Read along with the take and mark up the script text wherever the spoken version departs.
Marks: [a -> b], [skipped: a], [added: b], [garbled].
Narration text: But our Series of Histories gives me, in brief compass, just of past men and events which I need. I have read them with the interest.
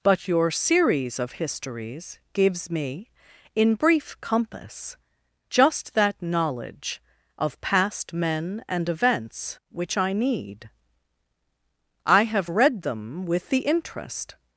But [our -> your] Series of Histories gives me, in brief compass, just [added: that knowledge] of past men and events which I need. I have read them with the interest.